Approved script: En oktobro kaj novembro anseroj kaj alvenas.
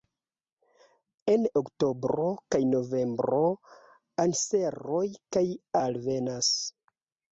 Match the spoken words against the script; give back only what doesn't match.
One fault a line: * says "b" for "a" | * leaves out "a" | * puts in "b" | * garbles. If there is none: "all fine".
all fine